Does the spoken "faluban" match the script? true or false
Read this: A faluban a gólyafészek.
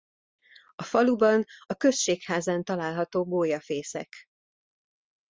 true